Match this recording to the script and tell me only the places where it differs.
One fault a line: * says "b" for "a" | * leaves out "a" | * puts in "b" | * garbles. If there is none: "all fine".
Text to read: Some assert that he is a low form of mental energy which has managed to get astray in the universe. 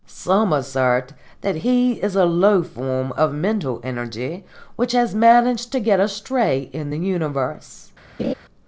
all fine